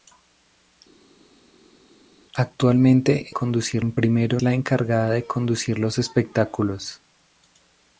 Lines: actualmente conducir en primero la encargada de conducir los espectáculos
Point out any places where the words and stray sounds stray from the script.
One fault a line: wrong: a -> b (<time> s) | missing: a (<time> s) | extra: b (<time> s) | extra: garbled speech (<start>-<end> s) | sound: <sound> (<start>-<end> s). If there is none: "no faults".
no faults